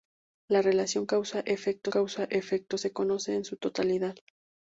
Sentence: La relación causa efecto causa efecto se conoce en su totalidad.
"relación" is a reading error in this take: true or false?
false